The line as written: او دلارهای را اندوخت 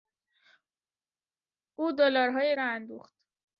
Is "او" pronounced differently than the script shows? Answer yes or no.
no